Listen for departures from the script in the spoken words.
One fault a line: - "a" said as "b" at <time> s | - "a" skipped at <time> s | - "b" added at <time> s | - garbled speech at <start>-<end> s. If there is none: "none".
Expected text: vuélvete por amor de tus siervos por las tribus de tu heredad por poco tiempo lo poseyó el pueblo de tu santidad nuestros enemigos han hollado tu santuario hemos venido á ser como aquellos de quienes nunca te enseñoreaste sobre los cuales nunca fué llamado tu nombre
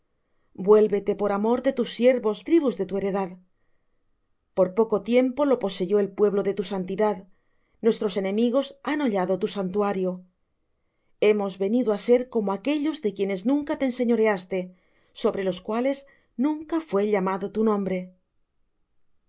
- "por las" skipped at 2.4 s